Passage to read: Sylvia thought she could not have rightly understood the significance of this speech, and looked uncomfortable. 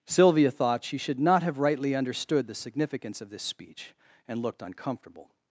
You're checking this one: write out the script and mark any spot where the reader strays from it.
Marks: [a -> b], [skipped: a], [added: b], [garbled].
Sylvia thought she [could -> should] not have rightly understood the significance of this speech, and looked uncomfortable.